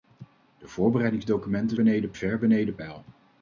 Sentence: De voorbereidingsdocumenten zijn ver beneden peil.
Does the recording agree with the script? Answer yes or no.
no